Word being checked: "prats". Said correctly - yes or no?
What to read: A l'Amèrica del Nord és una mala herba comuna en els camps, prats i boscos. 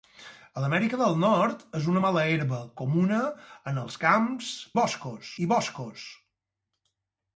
no